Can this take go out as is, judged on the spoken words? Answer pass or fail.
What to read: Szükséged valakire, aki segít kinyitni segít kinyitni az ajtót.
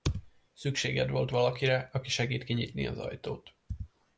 fail